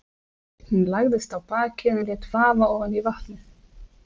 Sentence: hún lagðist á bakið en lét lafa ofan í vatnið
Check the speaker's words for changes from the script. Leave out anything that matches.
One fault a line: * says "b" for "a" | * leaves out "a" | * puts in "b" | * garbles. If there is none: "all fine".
all fine